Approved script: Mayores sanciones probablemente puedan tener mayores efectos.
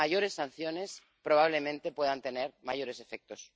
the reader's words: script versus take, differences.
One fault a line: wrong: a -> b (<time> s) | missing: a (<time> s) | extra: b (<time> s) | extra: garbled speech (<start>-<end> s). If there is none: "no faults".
no faults